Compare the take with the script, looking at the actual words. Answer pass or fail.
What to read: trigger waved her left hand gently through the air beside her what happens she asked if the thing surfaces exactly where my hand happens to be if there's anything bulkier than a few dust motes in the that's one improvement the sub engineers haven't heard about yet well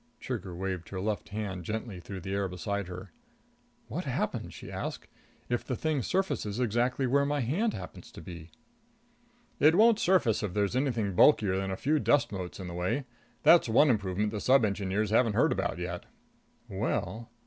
fail